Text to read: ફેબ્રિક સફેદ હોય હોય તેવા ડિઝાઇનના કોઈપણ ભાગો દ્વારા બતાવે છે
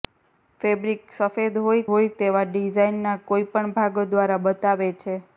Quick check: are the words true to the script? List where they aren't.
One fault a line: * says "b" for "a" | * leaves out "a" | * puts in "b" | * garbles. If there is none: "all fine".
all fine